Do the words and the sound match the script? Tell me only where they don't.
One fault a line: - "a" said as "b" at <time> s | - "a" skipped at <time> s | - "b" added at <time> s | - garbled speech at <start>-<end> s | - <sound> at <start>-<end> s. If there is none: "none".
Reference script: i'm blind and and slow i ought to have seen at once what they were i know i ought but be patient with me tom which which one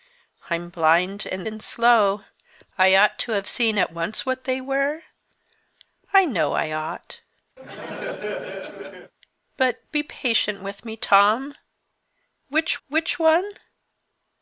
- laugh at 7.6-9.1 s